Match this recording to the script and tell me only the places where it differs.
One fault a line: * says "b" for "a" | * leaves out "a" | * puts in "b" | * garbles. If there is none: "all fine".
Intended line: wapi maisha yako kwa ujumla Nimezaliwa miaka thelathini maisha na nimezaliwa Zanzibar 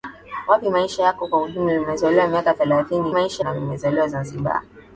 all fine